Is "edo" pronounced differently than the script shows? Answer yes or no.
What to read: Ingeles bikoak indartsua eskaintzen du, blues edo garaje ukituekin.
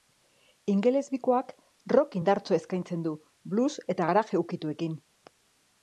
yes